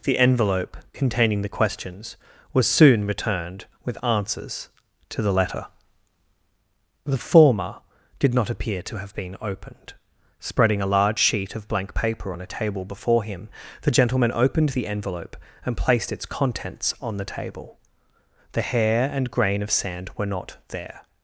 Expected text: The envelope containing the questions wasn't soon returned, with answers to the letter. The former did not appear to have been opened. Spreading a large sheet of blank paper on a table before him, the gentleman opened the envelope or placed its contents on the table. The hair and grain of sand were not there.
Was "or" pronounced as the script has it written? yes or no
no